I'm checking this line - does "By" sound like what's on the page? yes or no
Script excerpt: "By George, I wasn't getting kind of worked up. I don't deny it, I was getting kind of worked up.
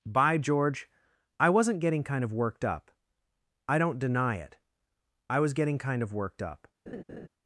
yes